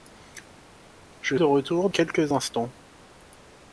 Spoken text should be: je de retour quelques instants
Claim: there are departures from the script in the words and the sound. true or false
false